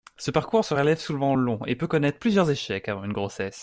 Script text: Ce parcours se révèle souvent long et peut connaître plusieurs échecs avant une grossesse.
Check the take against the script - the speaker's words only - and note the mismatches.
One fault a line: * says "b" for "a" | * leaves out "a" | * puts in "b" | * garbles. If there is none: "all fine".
all fine